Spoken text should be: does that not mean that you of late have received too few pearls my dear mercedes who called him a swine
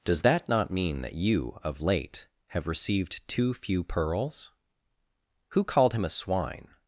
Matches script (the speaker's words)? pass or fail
fail